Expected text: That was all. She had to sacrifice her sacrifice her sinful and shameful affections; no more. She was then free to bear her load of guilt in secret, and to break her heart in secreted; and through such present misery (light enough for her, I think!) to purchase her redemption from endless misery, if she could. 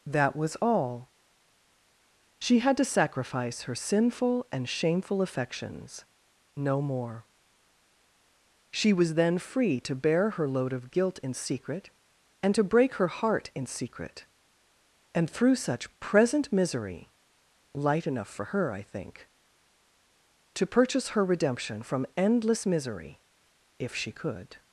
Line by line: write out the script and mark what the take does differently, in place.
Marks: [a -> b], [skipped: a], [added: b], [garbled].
That was all. She had to sacrifice her [skipped: sacrifice her] sinful and shameful affections; no more. She was then free to bear her load of guilt in secret, and to break her heart in [secreted; -> secret] and through such present misery (light enough for her, I think!) to purchase her redemption from endless misery, if she could.